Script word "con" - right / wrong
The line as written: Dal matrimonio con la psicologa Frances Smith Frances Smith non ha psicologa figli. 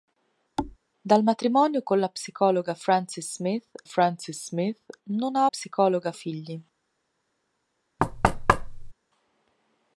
right